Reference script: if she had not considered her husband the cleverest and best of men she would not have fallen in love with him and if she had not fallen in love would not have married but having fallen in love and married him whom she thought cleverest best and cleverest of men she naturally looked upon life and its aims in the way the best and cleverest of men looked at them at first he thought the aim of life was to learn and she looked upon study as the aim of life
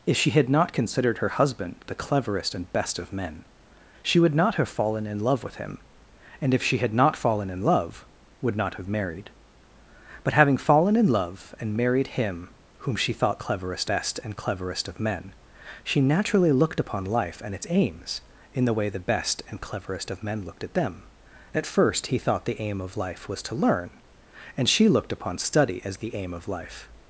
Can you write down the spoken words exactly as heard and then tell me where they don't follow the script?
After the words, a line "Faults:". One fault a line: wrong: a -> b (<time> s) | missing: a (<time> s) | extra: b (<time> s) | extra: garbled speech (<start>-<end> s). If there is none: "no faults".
if she had not considered her husband the cleverest and best of men she would not have fallen in love with him and if she had not fallen in love would not have married but having fallen in love and married him whom she thought cleverest best and cleverest of men she naturally looked upon life and its aims in the way the best and cleverest of men looked at them at first he thought the aim of life was to learn and she looked upon study as the aim of life
Faults:
no faults